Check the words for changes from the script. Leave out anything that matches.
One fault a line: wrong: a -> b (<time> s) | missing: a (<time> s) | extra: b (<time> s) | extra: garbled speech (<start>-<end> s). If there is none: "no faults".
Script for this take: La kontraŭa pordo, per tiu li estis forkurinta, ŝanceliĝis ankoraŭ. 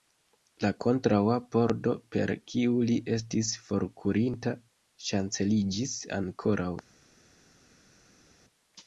wrong: tiu -> kiu (2.5 s)